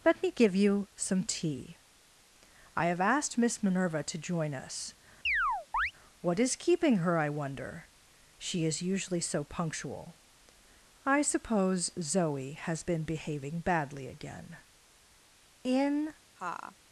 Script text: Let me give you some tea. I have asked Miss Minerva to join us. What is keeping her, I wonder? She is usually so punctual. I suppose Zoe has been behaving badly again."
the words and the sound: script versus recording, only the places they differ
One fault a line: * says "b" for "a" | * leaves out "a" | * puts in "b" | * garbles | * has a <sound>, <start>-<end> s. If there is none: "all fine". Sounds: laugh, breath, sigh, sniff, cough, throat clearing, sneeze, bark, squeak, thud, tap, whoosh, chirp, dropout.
* has a chirp, 5.3-5.9 s
* puts in "In"
* has a laugh, 16.4-16.8 s